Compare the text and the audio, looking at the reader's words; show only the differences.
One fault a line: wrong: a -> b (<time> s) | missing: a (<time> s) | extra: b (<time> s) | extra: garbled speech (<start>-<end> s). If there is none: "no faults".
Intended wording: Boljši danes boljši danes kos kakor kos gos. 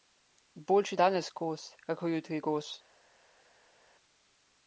missing: boljši danes (1.3 s)
wrong: kos -> jutri (2.1 s)